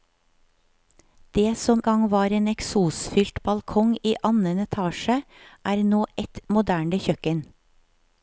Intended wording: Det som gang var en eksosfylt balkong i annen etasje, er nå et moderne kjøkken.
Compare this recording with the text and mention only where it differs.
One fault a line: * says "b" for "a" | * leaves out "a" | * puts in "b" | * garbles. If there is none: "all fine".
all fine